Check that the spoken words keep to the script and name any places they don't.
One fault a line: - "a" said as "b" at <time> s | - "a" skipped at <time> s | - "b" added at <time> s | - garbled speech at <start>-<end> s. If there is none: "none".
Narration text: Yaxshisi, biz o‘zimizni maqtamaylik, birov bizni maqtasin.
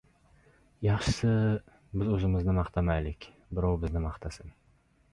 none